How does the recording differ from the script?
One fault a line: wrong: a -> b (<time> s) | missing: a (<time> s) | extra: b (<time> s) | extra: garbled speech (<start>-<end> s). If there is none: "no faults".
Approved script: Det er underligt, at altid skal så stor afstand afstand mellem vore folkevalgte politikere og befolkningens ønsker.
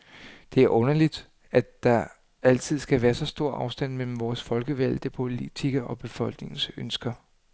extra: der (1.8 s)
extra: være (3.0 s)
missing: afstand (4.0 s)